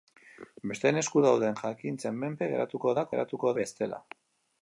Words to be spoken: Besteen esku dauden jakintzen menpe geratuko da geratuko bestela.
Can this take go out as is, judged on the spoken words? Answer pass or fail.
pass